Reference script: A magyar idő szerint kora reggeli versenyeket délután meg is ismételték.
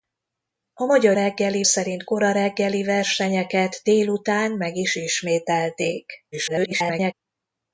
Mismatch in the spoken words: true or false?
true